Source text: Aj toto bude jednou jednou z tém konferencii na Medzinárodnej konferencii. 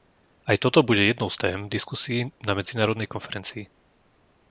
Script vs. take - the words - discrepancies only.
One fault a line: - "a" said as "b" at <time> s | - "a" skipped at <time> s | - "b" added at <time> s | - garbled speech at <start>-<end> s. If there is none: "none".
- "jednou" skipped at 1.3 s
- "konferencii" said as "diskusií" at 1.7 s